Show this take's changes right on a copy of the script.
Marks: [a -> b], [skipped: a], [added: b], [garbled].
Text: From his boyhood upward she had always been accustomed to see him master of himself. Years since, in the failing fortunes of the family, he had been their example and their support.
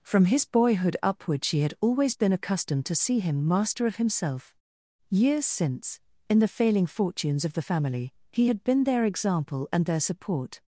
From his boyhood upward she had always been accustomed to see him master of himself. Years since, in the failing fortunes of the family, he had been their example and their support.